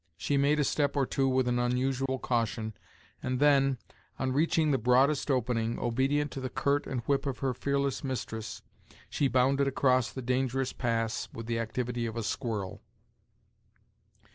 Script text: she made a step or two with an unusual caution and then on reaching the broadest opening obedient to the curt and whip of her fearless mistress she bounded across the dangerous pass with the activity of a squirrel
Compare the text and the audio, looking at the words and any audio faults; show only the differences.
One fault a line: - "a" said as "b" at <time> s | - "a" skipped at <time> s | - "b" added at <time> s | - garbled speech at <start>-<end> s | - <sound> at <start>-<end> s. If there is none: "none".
- dropout at 2.1-2.1 s